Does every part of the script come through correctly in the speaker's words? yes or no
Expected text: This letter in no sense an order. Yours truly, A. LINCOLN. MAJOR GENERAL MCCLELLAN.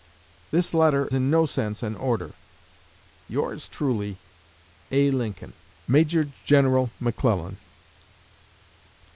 yes